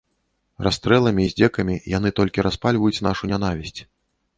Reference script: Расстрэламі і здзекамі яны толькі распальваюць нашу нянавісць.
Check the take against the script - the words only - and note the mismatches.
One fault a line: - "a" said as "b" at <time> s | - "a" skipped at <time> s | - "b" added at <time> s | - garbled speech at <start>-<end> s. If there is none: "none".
none